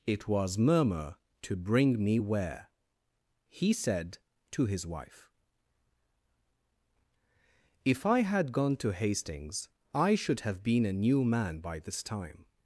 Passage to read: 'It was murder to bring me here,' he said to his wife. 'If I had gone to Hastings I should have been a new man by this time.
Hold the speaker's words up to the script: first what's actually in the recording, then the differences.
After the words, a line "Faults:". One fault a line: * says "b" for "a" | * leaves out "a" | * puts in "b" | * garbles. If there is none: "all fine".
'It was murmur to bring me where,' he said to his wife. 'If I had gone to Hastings I should have been a new man by this time.
Faults:
* says "murmur" for "murder"
* says "where" for "here"